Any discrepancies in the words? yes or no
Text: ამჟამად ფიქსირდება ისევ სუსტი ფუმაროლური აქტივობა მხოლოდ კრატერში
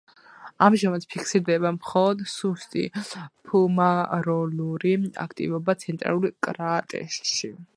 yes